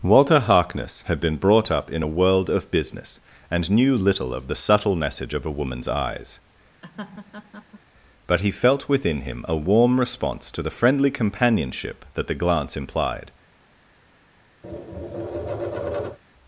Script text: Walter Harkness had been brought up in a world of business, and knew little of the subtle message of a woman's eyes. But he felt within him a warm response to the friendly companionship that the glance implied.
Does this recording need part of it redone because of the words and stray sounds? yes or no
yes